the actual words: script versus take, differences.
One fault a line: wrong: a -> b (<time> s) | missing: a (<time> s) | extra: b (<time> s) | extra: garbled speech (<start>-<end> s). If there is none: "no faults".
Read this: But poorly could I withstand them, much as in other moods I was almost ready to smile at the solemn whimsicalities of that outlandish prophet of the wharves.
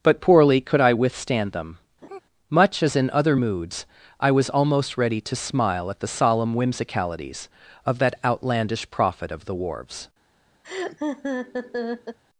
no faults